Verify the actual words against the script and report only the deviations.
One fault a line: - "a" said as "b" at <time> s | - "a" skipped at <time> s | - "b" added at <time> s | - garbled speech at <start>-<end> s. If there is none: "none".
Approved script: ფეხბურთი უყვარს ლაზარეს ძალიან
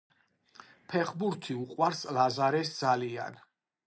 none